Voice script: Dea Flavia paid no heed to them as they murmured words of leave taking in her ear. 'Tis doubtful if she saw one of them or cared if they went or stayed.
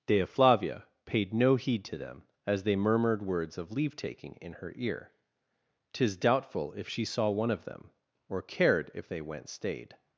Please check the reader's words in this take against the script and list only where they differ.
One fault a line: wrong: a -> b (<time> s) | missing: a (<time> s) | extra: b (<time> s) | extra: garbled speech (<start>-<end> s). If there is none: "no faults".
missing: or (9.5 s)